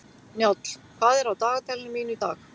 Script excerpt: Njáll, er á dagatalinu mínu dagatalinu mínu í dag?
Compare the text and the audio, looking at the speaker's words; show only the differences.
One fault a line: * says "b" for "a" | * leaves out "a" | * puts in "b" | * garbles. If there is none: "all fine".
* puts in "hvað"
* leaves out "dagatalinu mínu"